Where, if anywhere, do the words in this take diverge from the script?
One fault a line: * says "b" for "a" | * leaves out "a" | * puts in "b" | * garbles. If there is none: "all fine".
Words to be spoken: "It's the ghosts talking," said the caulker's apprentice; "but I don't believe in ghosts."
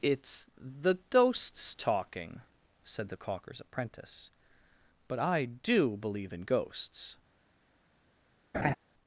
* says "do" for "don't"